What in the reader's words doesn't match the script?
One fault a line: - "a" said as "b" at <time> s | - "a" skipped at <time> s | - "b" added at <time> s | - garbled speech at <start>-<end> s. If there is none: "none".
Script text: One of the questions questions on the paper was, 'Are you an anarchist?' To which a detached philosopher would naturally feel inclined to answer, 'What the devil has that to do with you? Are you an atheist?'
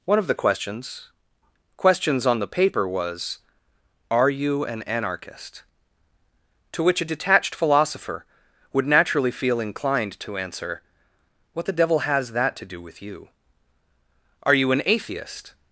none